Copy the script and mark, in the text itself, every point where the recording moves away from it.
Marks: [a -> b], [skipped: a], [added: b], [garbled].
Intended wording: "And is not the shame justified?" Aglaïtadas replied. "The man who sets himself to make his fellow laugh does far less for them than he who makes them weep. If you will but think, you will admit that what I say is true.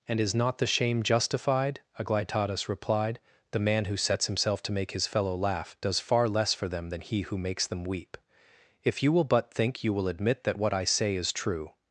"And is not the shame justified?" Aglaïtadas replied. "The man who sets himself to make his fellow laugh does far less for them than he who makes them weep. If you will but think, you will admit that what I say is true.